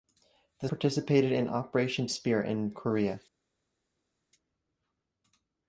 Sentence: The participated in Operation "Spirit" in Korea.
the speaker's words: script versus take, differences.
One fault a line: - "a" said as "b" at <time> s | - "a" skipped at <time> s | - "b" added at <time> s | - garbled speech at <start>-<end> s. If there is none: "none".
none